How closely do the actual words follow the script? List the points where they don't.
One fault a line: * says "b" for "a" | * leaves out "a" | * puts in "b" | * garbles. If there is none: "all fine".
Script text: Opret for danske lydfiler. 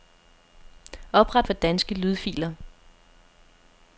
all fine